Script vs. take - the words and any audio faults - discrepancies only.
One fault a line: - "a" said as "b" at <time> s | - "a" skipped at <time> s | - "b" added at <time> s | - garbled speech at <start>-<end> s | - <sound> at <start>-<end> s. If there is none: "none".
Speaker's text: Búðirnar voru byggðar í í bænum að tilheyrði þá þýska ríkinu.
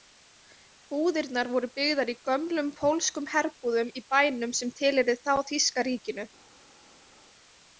- "gömlum pólskum herbúðum" added at 2.3 s
- "að" said as "sem" at 4.6 s